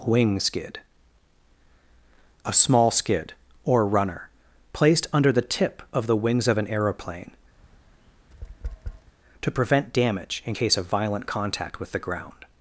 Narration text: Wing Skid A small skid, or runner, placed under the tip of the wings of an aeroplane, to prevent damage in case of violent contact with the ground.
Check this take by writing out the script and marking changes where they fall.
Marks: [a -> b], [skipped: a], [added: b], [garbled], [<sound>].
Wing Skid A small skid, or runner, placed under the tip of the wings of an aeroplane, [tap] to prevent damage in case of violent contact with the ground.